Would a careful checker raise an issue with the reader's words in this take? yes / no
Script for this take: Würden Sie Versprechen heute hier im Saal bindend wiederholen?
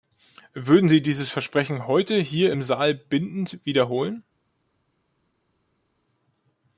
yes